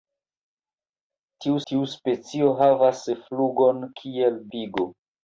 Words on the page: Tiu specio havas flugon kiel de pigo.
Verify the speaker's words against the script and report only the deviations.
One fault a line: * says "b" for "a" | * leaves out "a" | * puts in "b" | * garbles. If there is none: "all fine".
* puts in "tiu"
* leaves out "de"